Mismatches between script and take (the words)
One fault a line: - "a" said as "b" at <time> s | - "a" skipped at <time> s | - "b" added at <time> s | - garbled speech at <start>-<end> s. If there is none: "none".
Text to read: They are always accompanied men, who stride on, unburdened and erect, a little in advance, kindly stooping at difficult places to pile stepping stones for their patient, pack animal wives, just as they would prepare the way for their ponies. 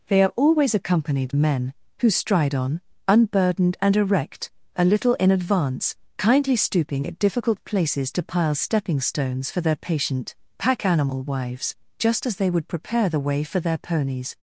none